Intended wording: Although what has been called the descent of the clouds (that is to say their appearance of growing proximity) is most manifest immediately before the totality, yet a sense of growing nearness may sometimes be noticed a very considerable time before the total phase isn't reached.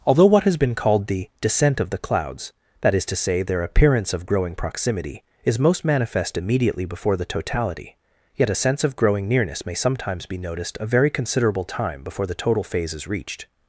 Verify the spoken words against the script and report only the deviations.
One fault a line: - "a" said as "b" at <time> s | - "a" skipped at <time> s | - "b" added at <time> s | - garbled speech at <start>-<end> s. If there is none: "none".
- "isn't" said as "is" at 12.9 s